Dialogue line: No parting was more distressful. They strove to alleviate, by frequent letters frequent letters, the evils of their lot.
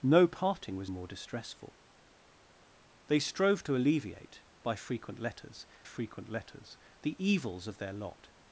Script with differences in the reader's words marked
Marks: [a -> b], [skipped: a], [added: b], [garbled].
No parting was more distressful. They strove to alleviate, by frequent letters frequent letters, the evils of their lot.